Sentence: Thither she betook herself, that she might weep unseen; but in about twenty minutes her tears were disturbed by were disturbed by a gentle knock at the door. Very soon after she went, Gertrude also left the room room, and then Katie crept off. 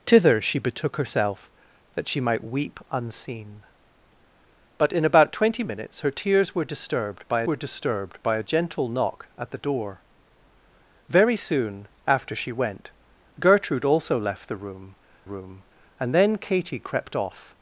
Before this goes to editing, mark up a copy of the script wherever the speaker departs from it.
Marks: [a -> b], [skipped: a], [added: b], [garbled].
Thither she betook herself, that she might weep unseen; but in about twenty minutes her tears were disturbed by were disturbed by a gentle knock at the door. Very soon after she went, Gertrude also left the room room, and then Katie crept off.